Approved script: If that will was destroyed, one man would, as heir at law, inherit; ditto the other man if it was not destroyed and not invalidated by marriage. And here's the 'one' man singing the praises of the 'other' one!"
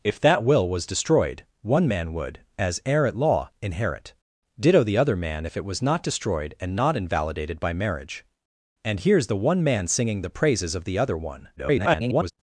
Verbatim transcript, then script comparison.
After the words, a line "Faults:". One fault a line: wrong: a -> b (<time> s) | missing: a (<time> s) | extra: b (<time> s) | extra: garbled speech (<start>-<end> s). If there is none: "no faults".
If that will was destroyed, one man would, as heir at law, inherit; ditto the other man if it was not destroyed and not invalidated by marriage. And here's the 'one' man singing the praises of the 'other' one!" [garbled]
Faults:
extra: garbled speech (11.6-12.3 s)